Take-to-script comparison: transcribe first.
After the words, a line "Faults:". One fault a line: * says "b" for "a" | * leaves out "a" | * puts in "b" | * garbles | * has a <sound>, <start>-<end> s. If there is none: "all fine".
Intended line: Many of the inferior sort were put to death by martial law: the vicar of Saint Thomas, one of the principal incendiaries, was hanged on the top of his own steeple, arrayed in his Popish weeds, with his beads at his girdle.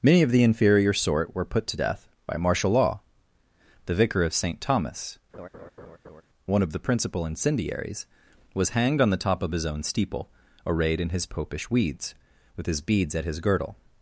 Many of the inferior sort were put to death by martial law: the vicar of Saint Thomas, one of the principal incendiaries, was hanged on the top of his own steeple, arrayed in his Popish weeds, with his beads at his girdle.
Faults:
* has a laugh, 5.3-6.2 s